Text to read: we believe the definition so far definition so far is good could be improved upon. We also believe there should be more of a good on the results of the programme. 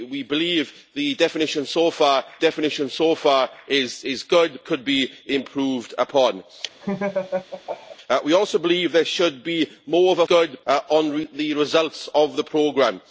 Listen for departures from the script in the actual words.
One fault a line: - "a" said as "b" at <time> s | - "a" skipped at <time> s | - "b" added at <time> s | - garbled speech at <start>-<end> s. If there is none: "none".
none